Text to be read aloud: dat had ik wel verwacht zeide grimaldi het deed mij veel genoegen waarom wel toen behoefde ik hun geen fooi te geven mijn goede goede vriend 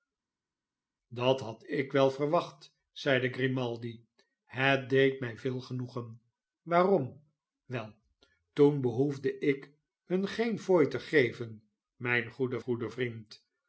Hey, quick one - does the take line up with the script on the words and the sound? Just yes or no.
yes